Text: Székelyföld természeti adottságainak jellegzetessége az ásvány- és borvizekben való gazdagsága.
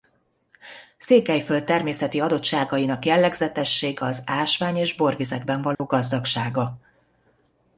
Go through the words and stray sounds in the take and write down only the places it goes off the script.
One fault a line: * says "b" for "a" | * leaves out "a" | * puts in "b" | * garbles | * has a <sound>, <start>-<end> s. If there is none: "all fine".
* has a dropout, 5.7-5.8 s